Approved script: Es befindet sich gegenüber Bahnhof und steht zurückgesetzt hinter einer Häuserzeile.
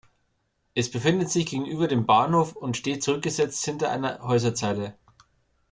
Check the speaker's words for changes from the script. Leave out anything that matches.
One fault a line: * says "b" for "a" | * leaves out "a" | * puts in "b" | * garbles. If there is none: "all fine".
* puts in "dem"